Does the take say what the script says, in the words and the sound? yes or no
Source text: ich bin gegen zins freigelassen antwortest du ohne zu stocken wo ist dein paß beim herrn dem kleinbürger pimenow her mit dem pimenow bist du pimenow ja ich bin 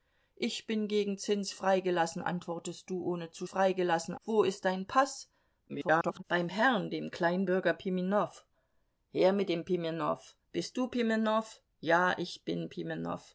no